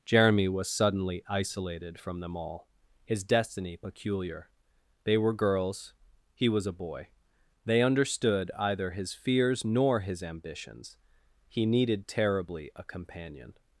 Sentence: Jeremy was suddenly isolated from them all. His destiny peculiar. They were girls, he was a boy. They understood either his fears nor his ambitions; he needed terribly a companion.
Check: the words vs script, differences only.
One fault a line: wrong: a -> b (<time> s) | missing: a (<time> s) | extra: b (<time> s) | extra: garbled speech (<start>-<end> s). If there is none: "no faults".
no faults